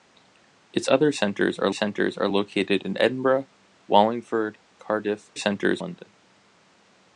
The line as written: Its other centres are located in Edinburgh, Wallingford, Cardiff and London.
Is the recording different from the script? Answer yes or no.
yes